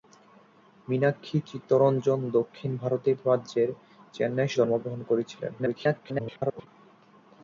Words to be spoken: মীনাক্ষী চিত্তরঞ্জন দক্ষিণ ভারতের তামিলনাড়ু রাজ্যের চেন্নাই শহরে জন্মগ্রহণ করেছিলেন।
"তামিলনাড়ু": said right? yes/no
no